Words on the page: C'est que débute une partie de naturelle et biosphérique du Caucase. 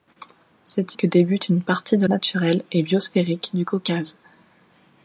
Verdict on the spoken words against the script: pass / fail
pass